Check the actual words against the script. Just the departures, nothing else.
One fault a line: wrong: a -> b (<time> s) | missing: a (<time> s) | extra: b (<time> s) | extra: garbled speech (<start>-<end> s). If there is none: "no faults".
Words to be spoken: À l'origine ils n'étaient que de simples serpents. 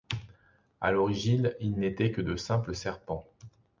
no faults